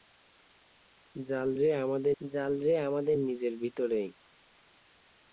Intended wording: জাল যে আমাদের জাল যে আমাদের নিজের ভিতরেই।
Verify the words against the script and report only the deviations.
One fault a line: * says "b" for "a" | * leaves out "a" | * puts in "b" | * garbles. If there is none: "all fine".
all fine